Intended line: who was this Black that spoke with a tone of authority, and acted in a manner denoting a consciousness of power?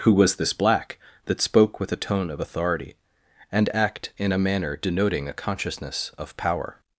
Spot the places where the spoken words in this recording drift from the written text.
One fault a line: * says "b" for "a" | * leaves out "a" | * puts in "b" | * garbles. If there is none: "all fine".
* says "act" for "acted"